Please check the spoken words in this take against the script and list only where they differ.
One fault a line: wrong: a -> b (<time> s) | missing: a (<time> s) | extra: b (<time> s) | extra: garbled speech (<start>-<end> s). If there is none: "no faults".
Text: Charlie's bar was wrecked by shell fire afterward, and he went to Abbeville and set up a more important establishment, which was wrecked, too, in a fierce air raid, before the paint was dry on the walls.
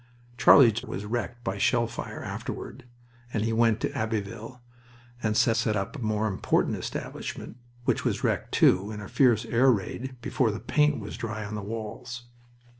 missing: bar (0.8 s)
extra: set (5.5 s)